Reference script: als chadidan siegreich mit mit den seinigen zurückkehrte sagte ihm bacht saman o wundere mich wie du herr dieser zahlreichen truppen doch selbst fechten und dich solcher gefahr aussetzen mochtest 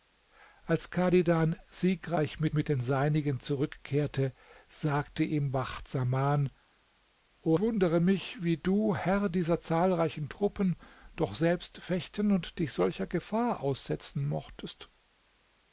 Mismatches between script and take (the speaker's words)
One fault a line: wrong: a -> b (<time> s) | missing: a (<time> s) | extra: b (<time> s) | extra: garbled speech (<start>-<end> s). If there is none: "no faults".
no faults